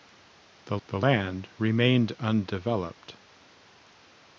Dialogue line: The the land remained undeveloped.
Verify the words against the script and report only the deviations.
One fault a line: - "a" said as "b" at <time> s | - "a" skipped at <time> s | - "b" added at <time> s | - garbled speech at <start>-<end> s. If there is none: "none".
none